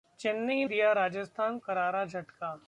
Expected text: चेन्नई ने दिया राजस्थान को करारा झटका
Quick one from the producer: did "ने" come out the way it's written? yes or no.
no